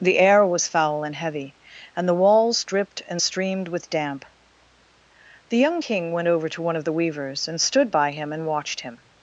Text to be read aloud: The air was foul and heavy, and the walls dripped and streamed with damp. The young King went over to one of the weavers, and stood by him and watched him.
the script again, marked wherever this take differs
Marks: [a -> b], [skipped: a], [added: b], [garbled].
The air was foul and heavy, and the walls dripped and streamed with damp. The young King went over to one of the weavers, and stood by him and watched him.